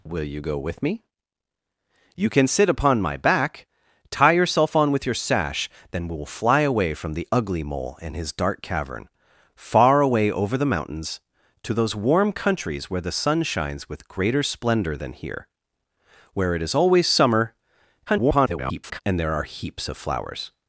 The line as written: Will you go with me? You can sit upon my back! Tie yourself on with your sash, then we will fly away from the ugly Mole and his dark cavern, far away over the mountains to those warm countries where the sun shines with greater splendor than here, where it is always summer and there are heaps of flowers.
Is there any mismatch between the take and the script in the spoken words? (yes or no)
yes